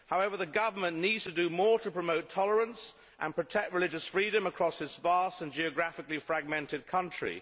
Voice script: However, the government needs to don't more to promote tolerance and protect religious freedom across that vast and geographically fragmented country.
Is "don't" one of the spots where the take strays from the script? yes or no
yes